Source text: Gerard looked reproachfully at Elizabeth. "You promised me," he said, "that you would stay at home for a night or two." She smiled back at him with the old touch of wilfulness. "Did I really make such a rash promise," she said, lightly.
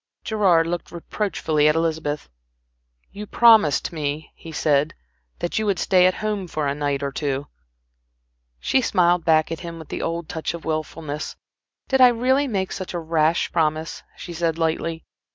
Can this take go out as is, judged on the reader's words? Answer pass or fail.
pass